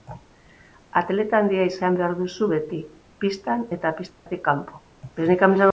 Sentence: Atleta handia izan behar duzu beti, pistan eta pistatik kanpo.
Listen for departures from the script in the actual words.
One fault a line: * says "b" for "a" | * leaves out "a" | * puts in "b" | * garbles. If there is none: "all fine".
all fine